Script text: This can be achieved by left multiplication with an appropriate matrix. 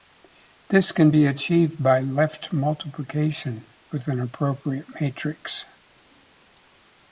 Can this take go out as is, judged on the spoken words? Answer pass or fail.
pass